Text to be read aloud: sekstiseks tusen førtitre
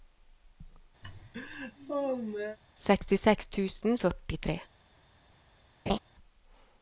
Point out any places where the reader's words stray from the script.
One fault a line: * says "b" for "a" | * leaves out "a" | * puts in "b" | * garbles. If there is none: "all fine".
all fine